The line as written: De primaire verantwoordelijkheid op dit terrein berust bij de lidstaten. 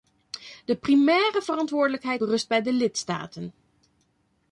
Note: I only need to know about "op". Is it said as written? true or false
false